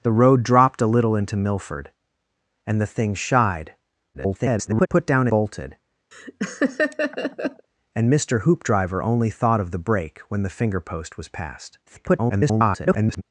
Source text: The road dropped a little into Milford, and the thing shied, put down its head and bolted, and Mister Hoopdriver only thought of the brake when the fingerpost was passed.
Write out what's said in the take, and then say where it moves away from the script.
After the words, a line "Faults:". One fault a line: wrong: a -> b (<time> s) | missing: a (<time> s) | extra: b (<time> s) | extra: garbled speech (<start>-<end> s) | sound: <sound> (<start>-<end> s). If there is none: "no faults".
The road dropped a little into Milford, and the thing shied, [garbled] put down bolted, and Mister Hoopdriver only thought of the brake when the fingerpost was passed. [garbled]
Faults:
extra: garbled speech (4.1-4.9 s)
missing: its head and (5.3 s)
sound: laugh (6.1-7.7 s)
extra: garbled speech (11.9-13.2 s)